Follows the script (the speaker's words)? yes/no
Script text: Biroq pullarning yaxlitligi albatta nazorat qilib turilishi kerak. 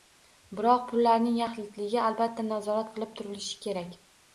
yes